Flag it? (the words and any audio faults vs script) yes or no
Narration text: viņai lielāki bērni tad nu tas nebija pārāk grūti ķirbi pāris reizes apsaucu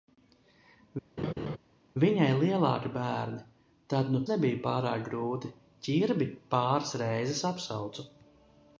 yes